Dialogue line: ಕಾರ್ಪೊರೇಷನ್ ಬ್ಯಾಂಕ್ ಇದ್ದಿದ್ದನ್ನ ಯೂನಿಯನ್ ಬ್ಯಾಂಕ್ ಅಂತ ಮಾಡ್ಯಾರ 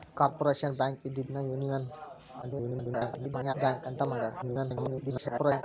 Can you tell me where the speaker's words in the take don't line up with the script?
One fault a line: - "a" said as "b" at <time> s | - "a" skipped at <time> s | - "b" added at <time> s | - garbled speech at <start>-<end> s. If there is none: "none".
- garbled speech at 2.4-3.5 s
- garbled speech at 4.4-5.6 s